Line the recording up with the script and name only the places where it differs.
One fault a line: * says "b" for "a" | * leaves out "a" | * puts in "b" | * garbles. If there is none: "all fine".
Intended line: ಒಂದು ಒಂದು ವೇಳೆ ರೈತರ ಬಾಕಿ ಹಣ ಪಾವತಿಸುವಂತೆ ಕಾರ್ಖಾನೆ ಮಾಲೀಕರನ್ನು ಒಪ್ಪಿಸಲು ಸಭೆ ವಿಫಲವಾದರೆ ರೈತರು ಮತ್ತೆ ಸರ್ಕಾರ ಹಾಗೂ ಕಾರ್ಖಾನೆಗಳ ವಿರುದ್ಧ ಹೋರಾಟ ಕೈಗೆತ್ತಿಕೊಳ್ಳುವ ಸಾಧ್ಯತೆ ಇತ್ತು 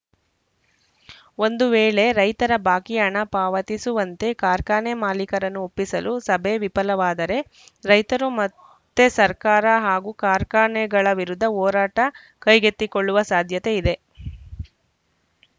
* leaves out "ಒಂದು"
* says "ಇದೆ" for "ಇತ್ತು"